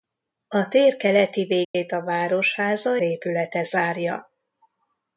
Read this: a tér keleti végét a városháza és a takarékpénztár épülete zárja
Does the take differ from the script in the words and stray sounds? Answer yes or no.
yes